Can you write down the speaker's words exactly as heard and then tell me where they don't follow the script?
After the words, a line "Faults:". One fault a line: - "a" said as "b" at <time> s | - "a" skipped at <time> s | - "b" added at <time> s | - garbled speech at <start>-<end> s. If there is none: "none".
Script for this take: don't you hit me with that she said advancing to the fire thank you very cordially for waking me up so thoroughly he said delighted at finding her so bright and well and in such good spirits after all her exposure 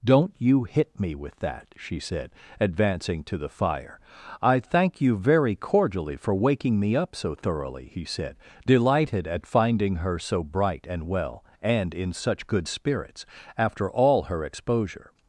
don't you hit me with that she said advancing to the fire i thank you very cordially for waking me up so thoroughly he said delighted at finding her so bright and well and in such good spirits after all her exposure
Faults:
- "i" added at 4.4 s